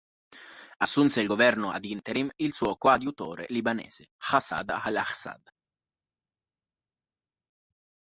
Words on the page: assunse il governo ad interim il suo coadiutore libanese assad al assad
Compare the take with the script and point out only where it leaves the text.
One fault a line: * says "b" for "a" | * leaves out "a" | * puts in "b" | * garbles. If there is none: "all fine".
all fine